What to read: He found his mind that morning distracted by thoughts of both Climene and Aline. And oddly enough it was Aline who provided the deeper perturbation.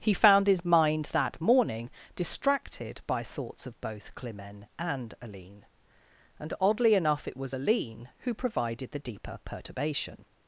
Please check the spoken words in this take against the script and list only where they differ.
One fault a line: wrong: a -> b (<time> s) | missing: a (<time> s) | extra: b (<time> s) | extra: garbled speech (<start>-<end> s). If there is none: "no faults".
no faults